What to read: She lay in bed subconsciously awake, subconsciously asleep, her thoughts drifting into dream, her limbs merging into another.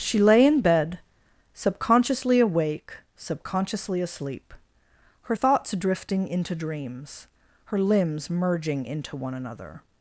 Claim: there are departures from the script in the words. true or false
true